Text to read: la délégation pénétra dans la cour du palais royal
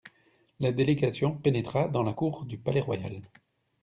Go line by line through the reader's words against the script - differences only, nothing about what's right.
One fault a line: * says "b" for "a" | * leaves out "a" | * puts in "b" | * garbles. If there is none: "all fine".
all fine